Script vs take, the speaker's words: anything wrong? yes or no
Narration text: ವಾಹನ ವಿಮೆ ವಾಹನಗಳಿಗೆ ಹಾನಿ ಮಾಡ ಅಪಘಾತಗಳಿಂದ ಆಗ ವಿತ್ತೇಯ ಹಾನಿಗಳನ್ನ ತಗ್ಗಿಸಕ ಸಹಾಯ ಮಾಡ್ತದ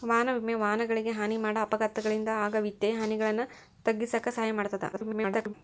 yes